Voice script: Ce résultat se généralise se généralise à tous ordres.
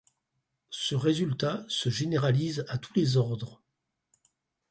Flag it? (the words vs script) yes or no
yes